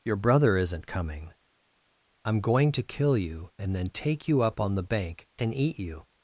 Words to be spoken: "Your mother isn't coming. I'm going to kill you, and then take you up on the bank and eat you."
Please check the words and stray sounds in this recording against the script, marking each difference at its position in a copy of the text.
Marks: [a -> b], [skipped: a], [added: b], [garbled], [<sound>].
"Your [mother -> brother] isn't coming. I'm going to kill you, and then take you up on the bank and eat you."